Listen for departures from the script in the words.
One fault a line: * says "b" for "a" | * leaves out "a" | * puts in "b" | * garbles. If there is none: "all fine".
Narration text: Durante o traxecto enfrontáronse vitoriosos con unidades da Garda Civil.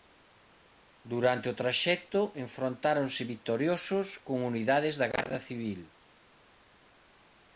all fine